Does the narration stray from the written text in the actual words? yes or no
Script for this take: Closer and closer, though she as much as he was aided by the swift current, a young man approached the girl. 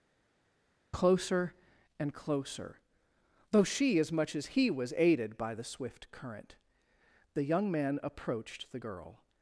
yes